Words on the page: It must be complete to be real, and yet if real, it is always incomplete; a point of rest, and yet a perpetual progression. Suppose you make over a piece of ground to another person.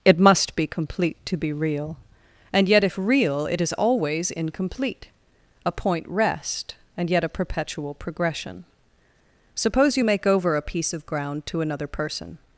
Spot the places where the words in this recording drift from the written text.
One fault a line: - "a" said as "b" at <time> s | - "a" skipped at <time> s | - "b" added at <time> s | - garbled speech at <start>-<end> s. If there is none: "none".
- "of" skipped at 6.0 s